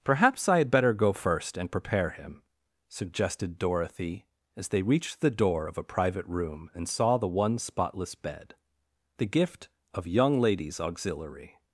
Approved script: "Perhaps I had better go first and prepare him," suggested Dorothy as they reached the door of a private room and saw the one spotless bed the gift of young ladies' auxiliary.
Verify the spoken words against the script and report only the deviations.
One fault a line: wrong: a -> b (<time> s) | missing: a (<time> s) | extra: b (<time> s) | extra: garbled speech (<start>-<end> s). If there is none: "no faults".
no faults